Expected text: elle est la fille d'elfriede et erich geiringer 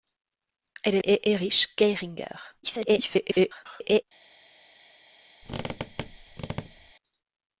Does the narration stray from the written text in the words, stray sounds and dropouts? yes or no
yes